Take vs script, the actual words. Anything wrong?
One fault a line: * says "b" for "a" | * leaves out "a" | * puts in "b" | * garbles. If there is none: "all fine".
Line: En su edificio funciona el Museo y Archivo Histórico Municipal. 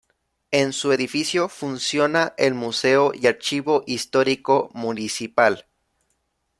all fine